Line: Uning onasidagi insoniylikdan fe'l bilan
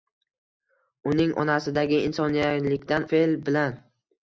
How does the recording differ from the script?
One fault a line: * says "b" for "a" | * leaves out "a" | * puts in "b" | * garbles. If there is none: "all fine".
all fine